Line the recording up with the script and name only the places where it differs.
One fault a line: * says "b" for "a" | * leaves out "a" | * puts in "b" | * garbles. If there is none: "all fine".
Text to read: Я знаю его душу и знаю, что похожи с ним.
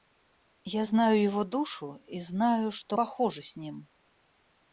all fine